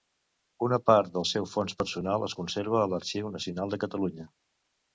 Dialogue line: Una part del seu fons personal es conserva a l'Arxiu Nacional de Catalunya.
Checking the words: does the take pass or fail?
pass